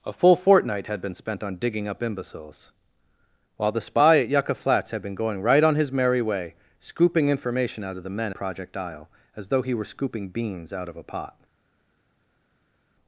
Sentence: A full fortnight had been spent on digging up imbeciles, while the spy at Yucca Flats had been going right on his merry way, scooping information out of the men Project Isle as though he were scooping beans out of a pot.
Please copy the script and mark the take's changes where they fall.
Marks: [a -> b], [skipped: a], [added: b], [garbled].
A full fortnight had been spent on digging up imbeciles, while the spy at Yucca Flats had been going right on his merry way, scooping information out of the men Project Isle as though he were scooping beans out of a pot.